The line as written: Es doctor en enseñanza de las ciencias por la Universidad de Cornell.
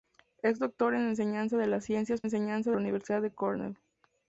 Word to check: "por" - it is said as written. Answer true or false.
false